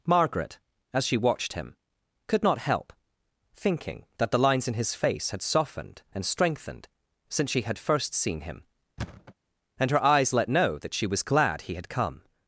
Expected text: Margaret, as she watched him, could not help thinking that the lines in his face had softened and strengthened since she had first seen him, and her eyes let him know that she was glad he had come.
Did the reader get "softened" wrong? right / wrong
right